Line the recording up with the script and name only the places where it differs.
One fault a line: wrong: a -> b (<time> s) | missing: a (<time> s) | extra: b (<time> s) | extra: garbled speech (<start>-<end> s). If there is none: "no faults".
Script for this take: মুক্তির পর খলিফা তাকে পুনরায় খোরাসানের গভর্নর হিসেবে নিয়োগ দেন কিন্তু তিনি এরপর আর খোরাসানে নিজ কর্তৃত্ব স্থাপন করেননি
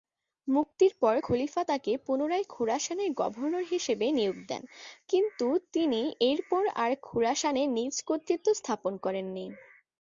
no faults